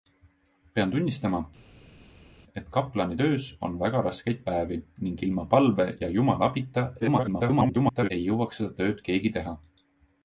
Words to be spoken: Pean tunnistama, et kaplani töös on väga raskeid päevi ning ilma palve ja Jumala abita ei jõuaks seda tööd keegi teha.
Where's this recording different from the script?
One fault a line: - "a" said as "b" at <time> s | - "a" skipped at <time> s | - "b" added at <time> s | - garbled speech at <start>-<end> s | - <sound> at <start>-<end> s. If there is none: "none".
- garbled speech at 7.0-8.1 s